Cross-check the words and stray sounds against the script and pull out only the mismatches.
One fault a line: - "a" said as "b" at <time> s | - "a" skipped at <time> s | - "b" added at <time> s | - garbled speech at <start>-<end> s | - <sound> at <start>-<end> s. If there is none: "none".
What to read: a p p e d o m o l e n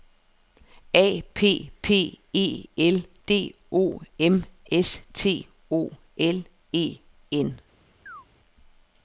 - "l" added at 2.8 s
- "s t" added at 4.7 s
- chirp at 8.1-8.3 s